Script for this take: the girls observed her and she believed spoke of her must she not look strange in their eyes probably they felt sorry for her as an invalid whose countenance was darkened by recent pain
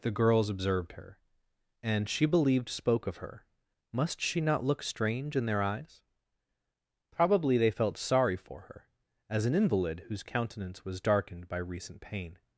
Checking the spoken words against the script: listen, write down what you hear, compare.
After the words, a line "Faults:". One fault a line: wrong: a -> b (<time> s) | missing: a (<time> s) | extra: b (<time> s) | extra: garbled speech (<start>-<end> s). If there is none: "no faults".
the girls observed her and she believed spoke of her must she not look strange in their eyes probably they felt sorry for her as an invalid whose countenance was darkened by recent pain
Faults:
no faults